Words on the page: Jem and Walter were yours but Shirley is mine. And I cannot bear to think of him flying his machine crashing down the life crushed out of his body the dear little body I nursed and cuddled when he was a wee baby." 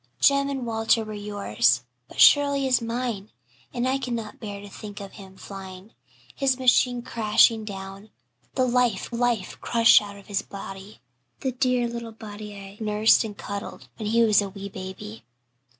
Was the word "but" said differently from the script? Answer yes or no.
no